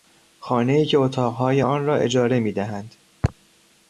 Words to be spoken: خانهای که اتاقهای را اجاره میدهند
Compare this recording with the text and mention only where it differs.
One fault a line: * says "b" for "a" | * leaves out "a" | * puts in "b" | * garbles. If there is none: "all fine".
* puts in "آن"